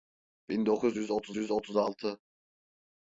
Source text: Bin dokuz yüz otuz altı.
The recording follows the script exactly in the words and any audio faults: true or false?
false